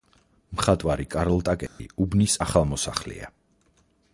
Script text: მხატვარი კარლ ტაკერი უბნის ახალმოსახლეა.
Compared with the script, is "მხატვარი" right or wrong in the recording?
right